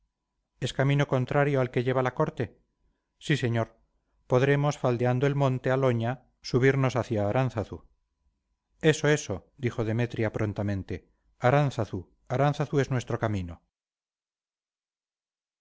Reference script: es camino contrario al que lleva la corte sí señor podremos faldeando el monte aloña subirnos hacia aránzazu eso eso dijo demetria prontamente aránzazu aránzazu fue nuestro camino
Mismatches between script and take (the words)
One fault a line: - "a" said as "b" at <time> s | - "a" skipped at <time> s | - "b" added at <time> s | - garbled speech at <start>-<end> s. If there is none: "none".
- "fue" said as "es" at 12.8 s